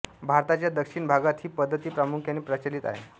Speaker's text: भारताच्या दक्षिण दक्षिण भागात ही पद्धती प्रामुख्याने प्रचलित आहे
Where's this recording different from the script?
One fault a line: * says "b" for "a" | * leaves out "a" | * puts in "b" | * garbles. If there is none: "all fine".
* leaves out "दक्षिण"